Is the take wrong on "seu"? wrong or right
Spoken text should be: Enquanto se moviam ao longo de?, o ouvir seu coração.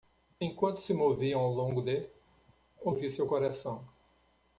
right